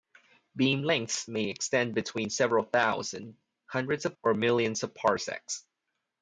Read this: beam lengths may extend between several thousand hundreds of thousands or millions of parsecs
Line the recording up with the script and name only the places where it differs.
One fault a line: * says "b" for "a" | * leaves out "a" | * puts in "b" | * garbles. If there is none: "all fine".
* leaves out "thousands"